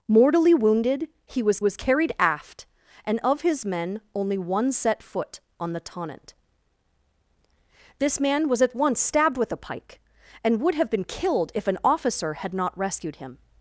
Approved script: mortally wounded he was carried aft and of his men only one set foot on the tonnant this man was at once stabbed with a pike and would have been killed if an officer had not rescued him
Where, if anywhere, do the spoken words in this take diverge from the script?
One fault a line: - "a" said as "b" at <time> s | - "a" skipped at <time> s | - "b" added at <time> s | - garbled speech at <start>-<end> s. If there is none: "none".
- "was" added at 1.6 s